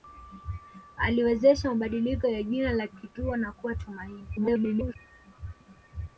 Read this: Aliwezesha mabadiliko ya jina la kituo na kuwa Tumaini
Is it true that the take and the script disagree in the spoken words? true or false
true